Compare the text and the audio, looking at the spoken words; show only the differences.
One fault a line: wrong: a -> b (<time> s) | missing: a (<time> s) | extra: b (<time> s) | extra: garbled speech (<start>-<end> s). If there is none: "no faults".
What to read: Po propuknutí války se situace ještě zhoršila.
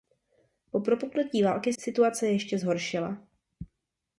missing: se (1.7 s)